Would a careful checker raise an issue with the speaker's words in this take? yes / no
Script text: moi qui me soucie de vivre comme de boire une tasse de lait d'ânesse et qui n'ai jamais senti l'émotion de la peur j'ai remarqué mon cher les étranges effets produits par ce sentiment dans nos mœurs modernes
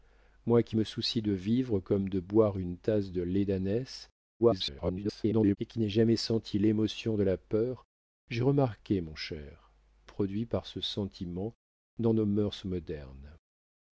yes